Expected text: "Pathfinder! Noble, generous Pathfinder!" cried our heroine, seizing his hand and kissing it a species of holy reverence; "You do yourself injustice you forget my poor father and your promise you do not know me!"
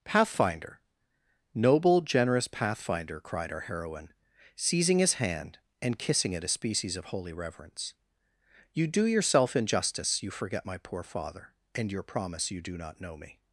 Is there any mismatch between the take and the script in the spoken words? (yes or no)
no